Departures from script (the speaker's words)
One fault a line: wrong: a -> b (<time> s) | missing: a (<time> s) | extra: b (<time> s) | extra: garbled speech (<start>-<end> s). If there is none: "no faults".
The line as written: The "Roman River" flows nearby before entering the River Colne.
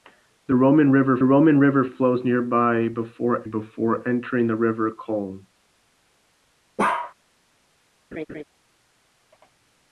extra: roman River (1.2 s)
extra: before (3.4 s)